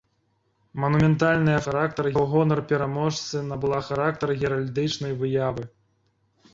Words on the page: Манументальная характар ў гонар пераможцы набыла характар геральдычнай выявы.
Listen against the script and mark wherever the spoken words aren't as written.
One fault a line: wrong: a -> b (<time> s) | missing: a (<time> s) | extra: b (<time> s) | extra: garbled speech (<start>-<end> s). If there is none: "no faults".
no faults